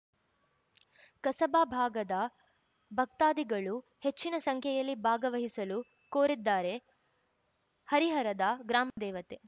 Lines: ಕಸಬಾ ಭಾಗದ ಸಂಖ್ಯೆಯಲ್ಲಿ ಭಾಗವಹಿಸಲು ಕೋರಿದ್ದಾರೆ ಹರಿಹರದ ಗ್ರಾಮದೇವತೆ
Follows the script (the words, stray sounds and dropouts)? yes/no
no